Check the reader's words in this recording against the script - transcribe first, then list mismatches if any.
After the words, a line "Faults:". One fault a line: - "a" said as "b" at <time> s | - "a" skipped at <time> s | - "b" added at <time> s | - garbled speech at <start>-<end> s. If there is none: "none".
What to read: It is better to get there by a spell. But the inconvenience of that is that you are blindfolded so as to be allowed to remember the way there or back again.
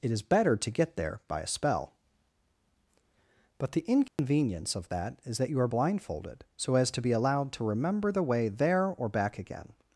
It is better to get there by a spell. But the inconvenience of that is that you are blindfolded so as to be allowed to remember the way there or back again.
Faults:
none